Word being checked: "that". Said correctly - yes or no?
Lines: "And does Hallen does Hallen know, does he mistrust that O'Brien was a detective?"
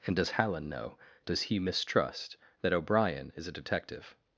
yes